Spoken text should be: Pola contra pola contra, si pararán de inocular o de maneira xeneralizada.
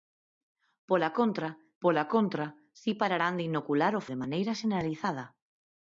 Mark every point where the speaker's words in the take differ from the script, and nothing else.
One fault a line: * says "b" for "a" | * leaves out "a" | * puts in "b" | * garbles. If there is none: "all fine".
all fine